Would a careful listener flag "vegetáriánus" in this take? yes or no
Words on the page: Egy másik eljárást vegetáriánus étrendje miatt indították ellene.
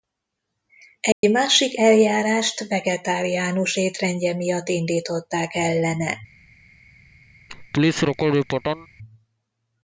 no